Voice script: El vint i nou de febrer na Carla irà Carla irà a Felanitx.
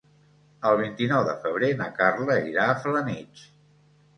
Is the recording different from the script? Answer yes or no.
yes